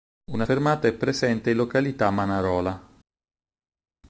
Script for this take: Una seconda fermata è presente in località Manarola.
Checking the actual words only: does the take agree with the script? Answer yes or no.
no